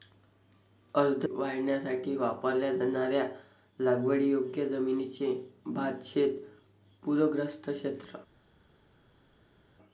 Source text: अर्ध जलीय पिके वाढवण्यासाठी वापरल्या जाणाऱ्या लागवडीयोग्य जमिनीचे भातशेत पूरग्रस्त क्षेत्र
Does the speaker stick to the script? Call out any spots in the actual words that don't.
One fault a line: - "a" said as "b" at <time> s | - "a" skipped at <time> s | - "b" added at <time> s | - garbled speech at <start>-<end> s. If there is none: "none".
- "जलीय पिके" skipped at 1.2 s